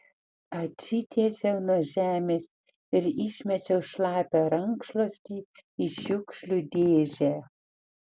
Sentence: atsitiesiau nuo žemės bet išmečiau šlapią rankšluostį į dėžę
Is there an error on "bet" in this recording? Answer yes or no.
yes